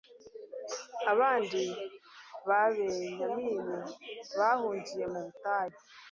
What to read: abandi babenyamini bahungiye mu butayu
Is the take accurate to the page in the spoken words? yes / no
yes